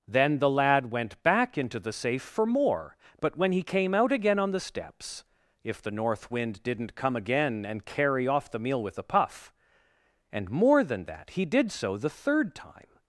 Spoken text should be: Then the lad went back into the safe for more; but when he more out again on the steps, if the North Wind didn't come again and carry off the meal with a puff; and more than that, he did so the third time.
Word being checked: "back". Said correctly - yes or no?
yes